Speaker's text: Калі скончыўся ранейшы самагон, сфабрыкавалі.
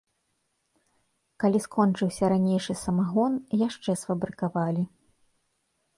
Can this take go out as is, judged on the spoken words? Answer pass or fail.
fail